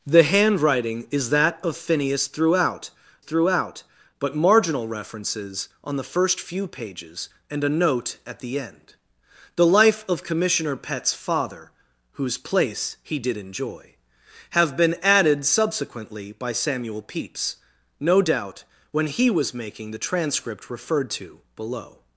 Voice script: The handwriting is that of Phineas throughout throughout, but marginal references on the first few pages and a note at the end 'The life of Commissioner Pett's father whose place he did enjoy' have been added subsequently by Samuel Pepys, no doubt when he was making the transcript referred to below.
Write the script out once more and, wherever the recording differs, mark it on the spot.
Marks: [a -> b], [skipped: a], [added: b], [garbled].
The handwriting is that of Phineas throughout throughout, but marginal references on the first few pages and a note at the end 'The life of Commissioner Pett's father whose place he did enjoy' have been added subsequently by Samuel Pepys, no doubt when he was making the transcript referred to below.